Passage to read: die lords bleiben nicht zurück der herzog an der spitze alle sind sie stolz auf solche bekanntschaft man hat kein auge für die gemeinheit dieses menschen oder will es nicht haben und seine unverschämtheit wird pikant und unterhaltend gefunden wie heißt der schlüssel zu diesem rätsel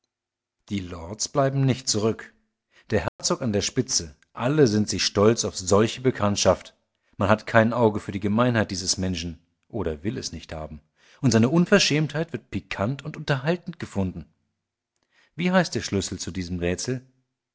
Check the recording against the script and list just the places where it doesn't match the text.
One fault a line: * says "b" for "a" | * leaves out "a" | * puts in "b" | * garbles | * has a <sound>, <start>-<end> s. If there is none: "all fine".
* has a dropout, 3.1-3.2 s